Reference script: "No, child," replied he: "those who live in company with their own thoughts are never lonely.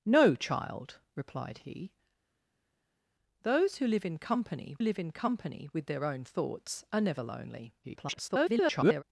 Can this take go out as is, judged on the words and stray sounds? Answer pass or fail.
fail